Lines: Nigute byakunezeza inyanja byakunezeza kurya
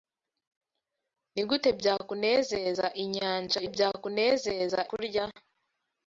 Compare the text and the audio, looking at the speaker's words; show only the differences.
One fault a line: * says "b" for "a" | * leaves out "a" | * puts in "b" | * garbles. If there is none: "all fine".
all fine